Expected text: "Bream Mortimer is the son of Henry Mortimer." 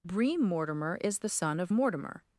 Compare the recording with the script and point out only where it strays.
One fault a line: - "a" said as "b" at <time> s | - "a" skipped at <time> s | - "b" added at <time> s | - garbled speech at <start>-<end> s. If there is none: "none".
- "Henry" skipped at 1.7 s